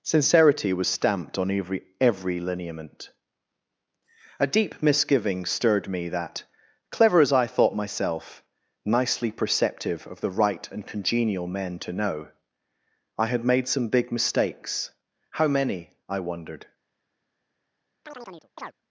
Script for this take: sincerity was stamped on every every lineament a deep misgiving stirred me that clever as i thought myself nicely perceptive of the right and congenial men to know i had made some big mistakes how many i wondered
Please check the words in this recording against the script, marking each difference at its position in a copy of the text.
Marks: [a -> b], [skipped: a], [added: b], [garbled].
sincerity was stamped on every every lineament a deep misgiving stirred me that clever as i thought myself nicely perceptive of the right and congenial men to know i had made some big mistakes how many i wondered